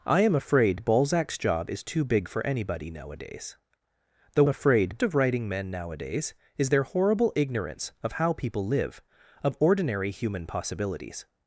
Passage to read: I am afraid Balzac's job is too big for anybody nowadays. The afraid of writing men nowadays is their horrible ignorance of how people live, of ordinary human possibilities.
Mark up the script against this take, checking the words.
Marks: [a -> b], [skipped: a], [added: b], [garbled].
I am afraid Balzac's job is too big for anybody nowadays. The afraid of writing men nowadays is their horrible ignorance of how people live, of ordinary human possibilities.